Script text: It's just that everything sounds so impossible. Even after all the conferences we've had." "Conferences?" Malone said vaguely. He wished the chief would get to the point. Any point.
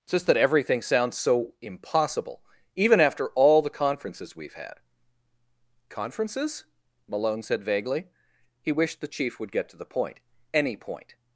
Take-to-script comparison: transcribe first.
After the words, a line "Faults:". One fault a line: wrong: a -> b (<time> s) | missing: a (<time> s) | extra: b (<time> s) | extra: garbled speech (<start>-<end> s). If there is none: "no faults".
It's just that everything sounds so impossible. Even after all the conferences we've had." "Conferences?" Malone said vaguely. He wished the chief would get to the point. Any point.
Faults:
no faults